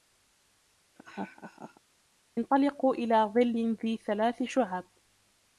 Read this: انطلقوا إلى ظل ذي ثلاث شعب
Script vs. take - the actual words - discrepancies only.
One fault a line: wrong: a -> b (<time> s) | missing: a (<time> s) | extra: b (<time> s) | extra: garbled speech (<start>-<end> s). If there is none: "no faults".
no faults